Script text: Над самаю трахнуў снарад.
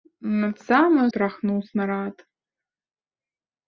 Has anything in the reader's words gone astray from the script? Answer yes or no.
no